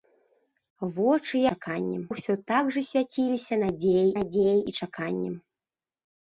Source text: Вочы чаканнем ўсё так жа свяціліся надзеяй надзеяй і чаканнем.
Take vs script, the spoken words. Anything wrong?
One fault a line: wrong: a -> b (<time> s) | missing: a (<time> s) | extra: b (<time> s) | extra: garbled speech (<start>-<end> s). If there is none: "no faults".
no faults